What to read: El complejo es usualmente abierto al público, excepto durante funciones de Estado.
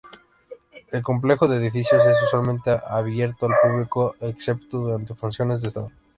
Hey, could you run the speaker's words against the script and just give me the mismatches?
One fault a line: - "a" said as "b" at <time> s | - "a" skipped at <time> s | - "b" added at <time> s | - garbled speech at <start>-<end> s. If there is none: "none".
- "de edificios" added at 1.5 s